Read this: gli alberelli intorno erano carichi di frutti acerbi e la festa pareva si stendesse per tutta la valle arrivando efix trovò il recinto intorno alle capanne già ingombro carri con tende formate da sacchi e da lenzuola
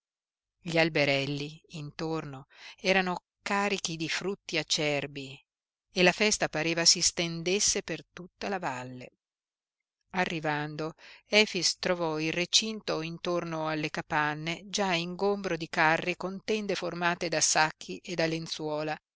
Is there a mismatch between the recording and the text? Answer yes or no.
yes